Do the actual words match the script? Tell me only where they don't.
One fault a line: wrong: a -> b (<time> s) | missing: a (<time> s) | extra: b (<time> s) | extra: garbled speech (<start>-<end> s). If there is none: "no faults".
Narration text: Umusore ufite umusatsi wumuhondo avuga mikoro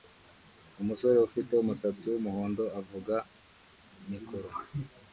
no faults